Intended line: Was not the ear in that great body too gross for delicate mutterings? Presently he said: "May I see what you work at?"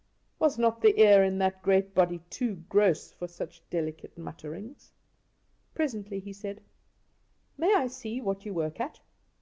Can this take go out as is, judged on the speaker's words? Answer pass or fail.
fail